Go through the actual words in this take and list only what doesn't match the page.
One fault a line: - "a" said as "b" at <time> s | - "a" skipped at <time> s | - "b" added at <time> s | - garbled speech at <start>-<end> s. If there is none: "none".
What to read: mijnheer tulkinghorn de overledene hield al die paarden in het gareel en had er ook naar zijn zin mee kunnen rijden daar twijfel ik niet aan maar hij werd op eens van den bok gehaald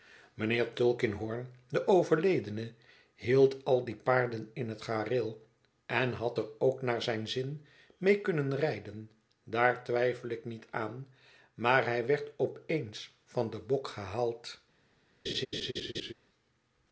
none